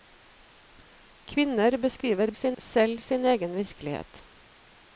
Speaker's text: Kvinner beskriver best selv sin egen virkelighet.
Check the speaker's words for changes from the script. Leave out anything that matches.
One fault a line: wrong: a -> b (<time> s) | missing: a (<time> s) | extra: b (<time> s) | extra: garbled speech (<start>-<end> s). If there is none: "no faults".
wrong: best -> sin (2.3 s)